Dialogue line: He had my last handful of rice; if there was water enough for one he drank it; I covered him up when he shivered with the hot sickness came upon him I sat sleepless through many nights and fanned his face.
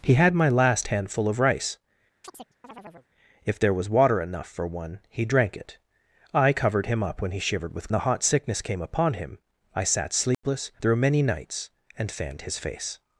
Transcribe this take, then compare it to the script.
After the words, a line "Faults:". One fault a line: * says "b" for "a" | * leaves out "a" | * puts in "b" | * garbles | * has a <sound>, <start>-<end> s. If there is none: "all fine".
He had my last handful of rice; if there was water enough for one he drank it; I covered him up when he shivered with the hot sickness came upon him I sat sleepless through many nights and fanned his face.
Faults:
* has a chirp, 2.2-3.1 s
* has a dropout, 10.3-10.4 s